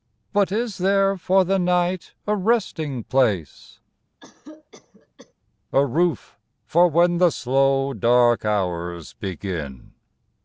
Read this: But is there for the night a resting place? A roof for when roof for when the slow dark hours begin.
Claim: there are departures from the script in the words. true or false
true